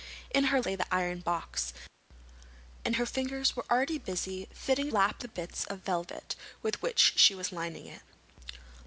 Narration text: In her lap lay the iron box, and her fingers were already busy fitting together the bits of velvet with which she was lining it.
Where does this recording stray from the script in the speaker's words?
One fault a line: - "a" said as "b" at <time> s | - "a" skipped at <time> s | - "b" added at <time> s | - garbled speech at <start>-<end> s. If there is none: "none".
- "lap" skipped at 0.6 s
- "together" said as "lap" at 4.9 s